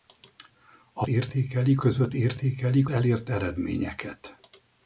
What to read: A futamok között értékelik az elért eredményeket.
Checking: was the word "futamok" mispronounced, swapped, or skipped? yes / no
yes